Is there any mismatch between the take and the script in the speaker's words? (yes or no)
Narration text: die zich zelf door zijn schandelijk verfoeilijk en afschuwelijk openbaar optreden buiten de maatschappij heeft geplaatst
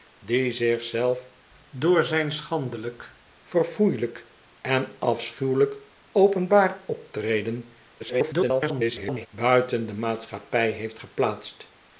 yes